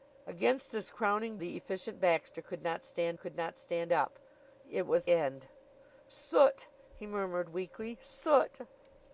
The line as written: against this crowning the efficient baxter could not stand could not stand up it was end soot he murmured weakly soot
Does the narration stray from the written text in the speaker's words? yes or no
no